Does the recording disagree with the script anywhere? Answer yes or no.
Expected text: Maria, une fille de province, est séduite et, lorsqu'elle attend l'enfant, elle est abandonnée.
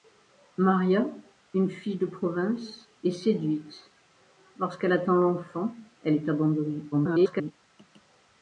yes